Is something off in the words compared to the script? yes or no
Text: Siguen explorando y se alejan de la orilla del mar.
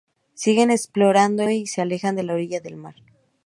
no